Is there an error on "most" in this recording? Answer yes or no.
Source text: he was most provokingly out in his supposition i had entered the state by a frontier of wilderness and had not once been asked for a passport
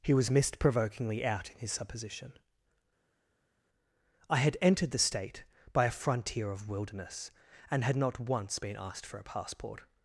yes